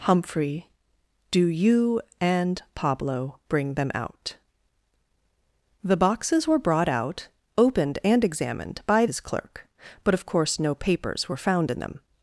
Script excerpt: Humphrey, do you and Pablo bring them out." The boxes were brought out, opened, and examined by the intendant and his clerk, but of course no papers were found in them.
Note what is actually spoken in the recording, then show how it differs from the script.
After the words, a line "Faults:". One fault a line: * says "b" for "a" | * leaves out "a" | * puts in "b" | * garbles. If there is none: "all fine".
Humphrey, do you and Pablo bring them out." The boxes were brought out, opened, and examined by his clerk, but of course no papers were found in them.
Faults:
* leaves out "the intendant and"